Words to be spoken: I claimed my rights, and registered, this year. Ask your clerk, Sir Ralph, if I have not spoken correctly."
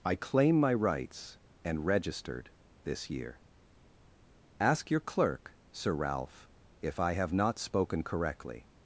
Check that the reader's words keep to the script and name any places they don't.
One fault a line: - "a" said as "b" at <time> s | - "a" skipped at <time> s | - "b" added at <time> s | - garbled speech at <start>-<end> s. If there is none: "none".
- "claimed" said as "claim" at 0.1 s